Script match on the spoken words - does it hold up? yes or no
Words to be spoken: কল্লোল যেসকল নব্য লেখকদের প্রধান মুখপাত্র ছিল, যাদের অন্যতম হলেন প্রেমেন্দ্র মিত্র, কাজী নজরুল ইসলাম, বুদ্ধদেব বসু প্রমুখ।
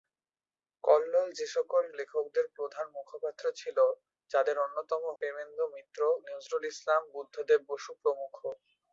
no